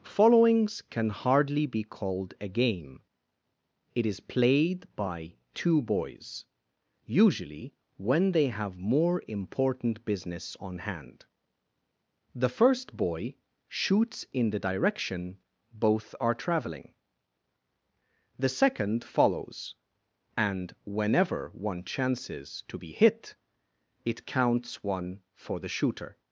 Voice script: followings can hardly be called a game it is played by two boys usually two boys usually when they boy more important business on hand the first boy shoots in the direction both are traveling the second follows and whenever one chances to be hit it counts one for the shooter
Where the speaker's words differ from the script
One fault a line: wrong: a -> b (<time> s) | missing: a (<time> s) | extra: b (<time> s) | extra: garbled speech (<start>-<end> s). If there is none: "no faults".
missing: two boys usually (7.7 s)
wrong: boy -> have (8.5 s)